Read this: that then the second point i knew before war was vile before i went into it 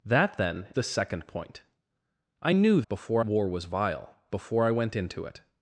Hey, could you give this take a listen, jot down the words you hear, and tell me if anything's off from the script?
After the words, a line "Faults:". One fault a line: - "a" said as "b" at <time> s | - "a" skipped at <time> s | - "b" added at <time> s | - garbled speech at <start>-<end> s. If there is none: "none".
that then the second point i knew before war was vile before i went into it
Faults:
none